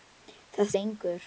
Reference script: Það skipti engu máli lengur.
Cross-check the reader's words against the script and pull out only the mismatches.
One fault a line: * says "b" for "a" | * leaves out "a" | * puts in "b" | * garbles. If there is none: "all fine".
* leaves out "skipti engu máli"